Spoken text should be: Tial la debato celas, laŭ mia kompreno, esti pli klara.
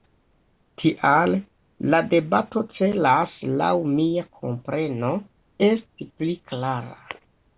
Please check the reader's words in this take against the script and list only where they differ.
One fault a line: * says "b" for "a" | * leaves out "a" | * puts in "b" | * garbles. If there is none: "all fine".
all fine